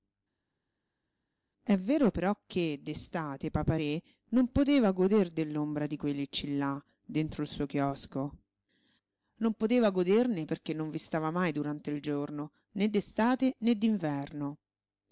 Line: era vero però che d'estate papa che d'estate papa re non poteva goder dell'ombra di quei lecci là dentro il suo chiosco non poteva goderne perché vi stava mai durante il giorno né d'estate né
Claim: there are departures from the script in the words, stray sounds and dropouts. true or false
true